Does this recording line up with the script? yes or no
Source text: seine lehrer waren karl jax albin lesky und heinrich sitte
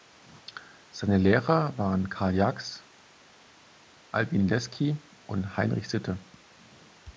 yes